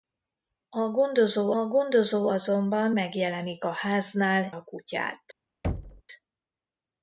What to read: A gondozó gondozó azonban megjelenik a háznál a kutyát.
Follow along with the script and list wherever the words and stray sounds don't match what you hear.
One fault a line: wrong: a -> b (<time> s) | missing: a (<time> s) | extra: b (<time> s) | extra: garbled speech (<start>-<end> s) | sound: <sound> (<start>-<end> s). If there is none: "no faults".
sound: thud (5.6-6.0 s)